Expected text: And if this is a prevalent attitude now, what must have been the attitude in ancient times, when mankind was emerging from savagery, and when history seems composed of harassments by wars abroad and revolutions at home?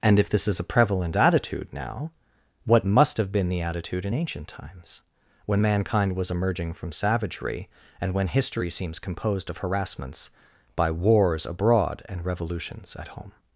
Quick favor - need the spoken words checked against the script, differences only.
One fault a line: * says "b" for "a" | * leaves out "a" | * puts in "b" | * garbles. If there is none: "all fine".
all fine